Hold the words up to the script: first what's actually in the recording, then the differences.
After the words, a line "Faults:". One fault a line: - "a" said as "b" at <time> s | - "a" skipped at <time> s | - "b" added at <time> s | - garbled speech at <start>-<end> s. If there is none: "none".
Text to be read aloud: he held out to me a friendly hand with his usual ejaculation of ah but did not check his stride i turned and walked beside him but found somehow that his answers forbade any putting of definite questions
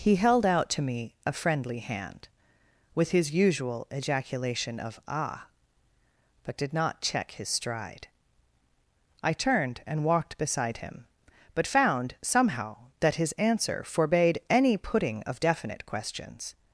he held out to me a friendly hand with his usual ejaculation of ah but did not check his stride i turned and walked beside him but found somehow that his answer forbade any putting of definite questions
Faults:
- "answers" said as "answer" at 13.3 s